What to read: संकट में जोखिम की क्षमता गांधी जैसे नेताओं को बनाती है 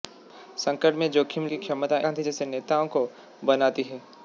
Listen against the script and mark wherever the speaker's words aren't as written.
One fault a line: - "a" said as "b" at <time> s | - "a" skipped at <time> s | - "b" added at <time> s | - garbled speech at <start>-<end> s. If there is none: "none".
none